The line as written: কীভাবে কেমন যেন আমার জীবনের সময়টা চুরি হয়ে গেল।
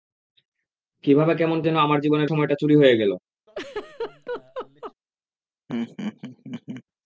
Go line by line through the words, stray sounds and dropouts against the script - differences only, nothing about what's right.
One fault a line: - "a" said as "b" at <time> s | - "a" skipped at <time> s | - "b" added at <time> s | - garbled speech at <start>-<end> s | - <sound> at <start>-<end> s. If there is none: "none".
- laugh at 3.5-4.9 s
- laugh at 5.7-6.8 s